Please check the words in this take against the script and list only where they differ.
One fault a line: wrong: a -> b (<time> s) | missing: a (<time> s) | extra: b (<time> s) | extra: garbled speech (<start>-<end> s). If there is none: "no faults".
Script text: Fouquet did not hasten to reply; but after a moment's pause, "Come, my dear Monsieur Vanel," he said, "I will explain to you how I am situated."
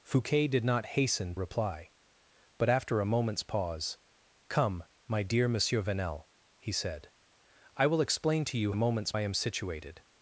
missing: to (1.4 s)
wrong: how -> moment's (8.7 s)